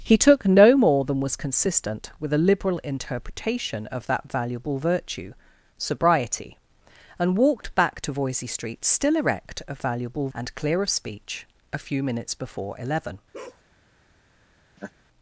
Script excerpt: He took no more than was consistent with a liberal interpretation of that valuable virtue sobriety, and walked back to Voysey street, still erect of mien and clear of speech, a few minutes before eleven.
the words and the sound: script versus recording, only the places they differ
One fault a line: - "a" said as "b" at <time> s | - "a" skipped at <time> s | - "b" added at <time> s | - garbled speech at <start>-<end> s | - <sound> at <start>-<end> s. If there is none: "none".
- "mien" said as "valuable" at 9.8 s
- bark at 13.3-13.6 s
- laugh at 14.8-14.9 s